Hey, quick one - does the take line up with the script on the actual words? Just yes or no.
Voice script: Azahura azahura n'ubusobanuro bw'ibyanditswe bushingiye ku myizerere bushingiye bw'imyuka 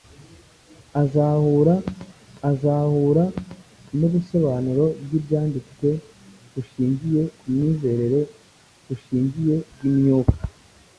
yes